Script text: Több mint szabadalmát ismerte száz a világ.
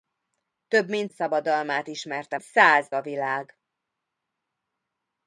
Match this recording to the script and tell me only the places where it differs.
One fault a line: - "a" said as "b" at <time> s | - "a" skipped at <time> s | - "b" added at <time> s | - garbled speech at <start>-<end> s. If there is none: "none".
none